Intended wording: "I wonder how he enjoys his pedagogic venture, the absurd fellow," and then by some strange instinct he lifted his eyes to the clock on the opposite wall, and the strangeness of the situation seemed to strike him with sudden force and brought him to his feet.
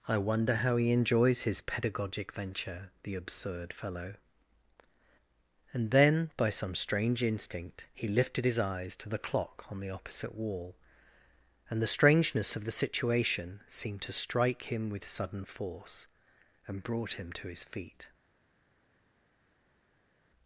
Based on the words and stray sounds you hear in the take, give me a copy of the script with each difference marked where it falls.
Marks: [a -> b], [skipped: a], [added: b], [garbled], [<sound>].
"I wonder how he enjoys his pedagogic venture, the absurd fellow," and then by some strange instinct he lifted his eyes to the clock on the opposite wall, and the strangeness of the situation seemed to strike him with sudden force and brought him to his feet.